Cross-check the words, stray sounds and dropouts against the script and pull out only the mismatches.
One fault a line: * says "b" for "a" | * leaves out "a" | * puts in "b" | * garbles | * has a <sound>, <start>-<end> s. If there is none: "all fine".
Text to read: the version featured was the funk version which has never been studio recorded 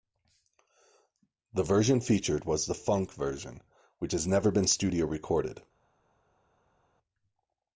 all fine